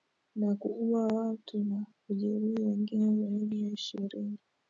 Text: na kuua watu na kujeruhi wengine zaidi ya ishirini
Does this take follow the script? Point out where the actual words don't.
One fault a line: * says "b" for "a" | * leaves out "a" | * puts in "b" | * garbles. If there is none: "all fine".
all fine